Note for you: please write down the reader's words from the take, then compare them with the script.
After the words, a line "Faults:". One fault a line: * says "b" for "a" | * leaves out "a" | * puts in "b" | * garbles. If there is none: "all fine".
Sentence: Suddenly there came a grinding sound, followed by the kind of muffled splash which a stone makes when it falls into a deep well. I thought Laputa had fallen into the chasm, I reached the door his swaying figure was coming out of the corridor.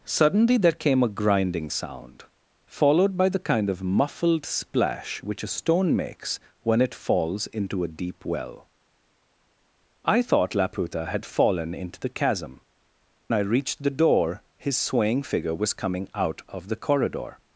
Suddenly there came a grinding sound, followed by the kind of muffled splash which a stone makes when it falls into a deep well. I thought Laputa had fallen into the chasm, I reached the door his swaying figure was coming out of the corridor.
Faults:
all fine